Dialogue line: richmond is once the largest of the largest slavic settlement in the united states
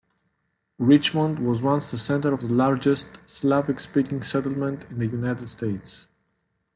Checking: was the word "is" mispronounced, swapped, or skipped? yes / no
yes